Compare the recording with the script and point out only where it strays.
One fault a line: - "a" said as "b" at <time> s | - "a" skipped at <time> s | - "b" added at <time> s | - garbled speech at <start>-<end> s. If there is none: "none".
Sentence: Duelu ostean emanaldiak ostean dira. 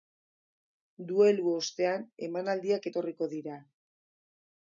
- "ostean" said as "etorriko" at 2.9 s